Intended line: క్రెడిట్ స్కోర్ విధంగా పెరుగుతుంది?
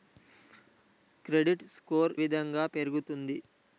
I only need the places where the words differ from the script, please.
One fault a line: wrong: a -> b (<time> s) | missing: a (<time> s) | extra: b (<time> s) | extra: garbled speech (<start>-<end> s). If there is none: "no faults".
no faults